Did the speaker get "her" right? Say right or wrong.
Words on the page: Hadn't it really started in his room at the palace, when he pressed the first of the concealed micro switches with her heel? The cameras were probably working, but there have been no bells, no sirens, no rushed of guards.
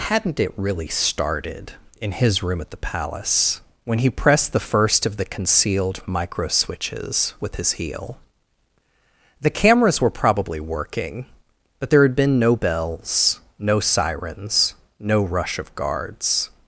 wrong